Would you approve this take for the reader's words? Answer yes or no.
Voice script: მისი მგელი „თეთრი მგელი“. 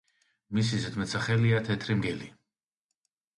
no